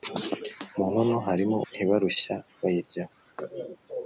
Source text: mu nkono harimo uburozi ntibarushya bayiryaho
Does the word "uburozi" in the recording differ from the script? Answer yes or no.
yes